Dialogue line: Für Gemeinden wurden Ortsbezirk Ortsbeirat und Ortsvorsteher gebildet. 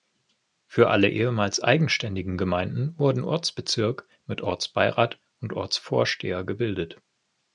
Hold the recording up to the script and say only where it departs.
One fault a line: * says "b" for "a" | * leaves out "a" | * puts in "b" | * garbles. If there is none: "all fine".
* puts in "alle ehemals eigenständigen"
* puts in "mit"